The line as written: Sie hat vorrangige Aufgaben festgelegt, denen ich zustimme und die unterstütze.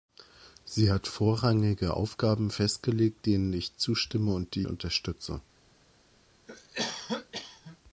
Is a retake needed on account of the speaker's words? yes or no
no